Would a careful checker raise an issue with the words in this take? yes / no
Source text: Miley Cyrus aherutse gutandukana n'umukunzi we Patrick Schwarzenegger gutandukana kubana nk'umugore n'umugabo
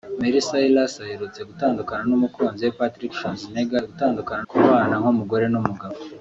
no